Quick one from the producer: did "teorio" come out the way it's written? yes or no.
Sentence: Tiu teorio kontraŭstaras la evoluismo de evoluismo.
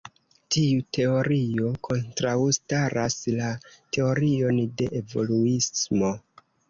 yes